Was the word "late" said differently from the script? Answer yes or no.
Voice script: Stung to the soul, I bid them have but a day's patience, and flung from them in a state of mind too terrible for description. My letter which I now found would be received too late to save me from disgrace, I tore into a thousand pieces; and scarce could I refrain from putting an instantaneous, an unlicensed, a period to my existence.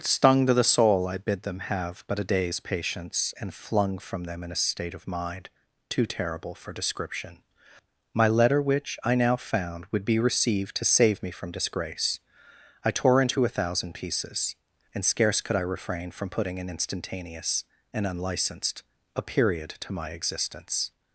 yes